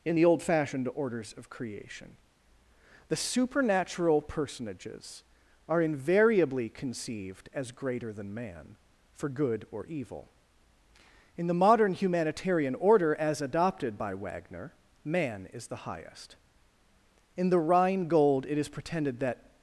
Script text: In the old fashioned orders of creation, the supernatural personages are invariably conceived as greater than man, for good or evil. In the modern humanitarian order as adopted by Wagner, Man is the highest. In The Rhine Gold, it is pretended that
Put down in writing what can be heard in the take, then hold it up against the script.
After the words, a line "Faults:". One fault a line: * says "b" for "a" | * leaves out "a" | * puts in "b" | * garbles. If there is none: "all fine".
In the old fashioned orders of creation, the supernatural personages are invariably conceived as greater than man, for good or evil. In the modern humanitarian order as adopted by Wagner, Man is the highest. In The Rhine Gold, it is pretended that
Faults:
all fine